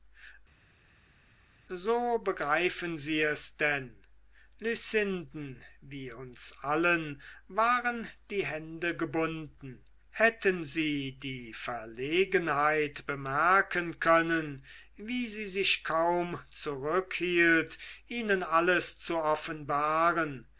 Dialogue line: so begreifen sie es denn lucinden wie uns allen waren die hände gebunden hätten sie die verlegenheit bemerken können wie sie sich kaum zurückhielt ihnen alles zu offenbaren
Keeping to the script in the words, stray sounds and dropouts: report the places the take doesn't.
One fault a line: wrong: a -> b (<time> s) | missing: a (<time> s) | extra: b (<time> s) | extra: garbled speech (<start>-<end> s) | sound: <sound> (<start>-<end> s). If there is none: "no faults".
no faults